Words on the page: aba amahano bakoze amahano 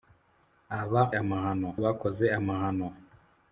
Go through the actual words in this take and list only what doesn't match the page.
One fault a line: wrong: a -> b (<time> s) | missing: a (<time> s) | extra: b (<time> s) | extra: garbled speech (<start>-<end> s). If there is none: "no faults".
no faults